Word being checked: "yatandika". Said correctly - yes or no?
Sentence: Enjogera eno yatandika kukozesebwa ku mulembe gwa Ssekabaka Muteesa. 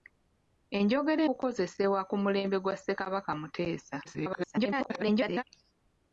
no